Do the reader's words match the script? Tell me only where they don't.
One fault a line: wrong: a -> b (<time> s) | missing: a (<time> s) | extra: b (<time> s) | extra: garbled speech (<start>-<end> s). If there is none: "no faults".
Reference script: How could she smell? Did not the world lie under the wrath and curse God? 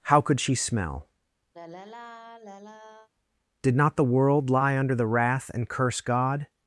no faults